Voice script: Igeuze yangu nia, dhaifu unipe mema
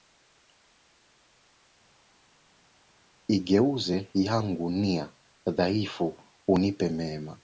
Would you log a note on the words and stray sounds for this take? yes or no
no